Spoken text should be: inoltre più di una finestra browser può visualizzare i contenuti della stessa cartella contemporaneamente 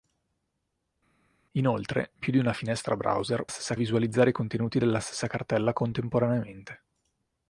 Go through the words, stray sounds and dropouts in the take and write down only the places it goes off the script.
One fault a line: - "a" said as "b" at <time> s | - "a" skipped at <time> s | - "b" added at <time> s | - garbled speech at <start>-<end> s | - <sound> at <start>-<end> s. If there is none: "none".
- "può" said as "stessa" at 3.4 s